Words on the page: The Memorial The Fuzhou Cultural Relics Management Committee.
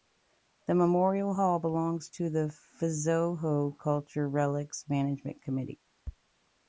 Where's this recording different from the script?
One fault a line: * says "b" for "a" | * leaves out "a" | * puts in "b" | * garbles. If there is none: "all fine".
* puts in "Hall belongs to"